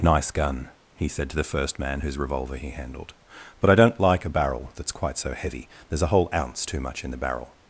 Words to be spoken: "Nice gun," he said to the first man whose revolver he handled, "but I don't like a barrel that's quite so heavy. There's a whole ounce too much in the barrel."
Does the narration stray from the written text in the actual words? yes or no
no